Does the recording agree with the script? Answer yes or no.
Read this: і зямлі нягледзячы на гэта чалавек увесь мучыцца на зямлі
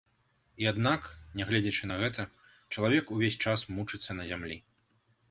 no